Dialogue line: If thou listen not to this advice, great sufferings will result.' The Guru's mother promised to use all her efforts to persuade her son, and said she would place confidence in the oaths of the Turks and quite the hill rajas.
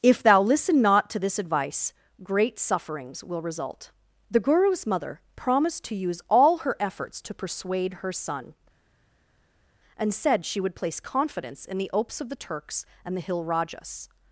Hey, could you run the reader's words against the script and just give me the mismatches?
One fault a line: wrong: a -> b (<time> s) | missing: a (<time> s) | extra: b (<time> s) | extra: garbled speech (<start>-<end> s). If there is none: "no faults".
missing: quite (13.2 s)